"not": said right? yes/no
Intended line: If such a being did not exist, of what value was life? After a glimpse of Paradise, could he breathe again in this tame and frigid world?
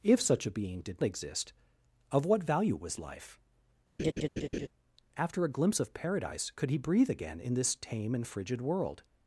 no